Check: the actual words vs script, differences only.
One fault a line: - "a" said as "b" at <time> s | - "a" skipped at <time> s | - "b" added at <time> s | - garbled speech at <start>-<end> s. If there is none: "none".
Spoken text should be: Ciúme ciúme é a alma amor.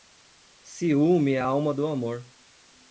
- "ciúme" skipped at 1.3 s
- "do" added at 1.7 s